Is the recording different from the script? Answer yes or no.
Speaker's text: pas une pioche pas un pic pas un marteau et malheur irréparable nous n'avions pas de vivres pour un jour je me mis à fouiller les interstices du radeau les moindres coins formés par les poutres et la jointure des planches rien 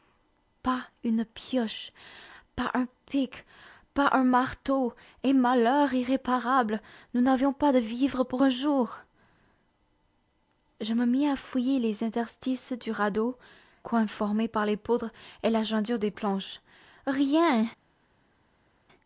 yes